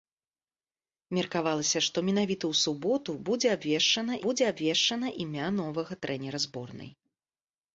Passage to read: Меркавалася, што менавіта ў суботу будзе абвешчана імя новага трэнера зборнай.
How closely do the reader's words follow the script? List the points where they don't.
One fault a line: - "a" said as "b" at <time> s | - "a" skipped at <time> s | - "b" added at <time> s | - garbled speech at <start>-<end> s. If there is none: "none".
- "будзе абвешчана" added at 4.3 s